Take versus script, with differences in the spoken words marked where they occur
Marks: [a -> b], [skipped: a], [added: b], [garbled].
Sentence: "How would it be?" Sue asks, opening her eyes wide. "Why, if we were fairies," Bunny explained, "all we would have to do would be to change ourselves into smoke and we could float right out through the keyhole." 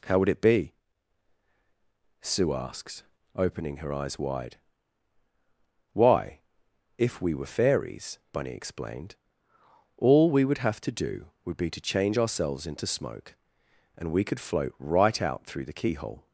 "How would it be?" Sue asks, opening her eyes wide. "Why, if we were fairies," Bunny explained, "all we would have to do would be to change ourselves into smoke and we could float right out through the keyhole."